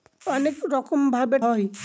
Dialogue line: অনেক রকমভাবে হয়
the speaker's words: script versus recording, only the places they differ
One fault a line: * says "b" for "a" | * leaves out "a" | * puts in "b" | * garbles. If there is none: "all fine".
all fine